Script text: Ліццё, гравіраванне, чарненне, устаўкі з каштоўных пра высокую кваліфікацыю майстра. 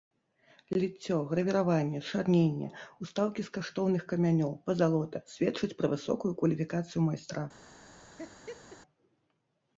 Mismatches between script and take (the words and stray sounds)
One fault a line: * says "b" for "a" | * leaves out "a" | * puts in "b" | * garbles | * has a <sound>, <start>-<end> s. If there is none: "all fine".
* puts in "камянёў пазалота сведчаць"
* has a laugh, 8.2-8.8 s